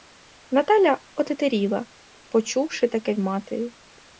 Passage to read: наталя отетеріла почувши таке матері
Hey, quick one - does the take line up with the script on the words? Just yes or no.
yes